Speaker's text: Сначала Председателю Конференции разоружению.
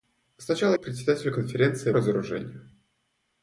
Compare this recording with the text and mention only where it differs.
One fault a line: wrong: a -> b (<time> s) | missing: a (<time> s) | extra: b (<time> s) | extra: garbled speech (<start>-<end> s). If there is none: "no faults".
no faults